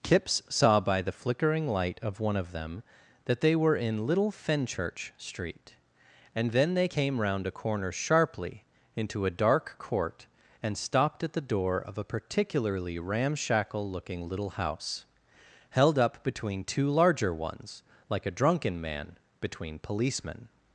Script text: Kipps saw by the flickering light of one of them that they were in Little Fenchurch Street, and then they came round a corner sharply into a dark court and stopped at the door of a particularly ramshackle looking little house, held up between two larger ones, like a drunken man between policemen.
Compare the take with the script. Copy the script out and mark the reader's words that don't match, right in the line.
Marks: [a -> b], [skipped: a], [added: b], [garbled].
Kipps saw by the flickering light of one of them that they were in Little Fenchurch Street, and then they came round a corner sharply into a dark court and stopped at the door of a particularly ramshackle looking little house, held up between two larger ones, like a drunken man between policemen.